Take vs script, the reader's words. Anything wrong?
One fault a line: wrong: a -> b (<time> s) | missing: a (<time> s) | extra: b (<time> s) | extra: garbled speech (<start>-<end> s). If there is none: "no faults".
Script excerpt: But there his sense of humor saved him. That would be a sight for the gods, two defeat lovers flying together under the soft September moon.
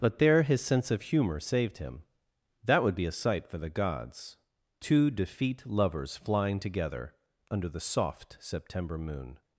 no faults